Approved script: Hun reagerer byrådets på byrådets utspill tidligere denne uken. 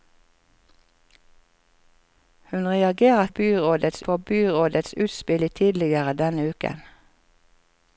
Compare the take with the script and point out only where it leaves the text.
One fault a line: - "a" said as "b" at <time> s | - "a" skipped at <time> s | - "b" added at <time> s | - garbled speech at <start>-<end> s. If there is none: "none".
none